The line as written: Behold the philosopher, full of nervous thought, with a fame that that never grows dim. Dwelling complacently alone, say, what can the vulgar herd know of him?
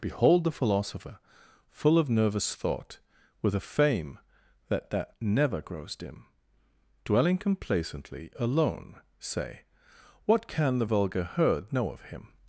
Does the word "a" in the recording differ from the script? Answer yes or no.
no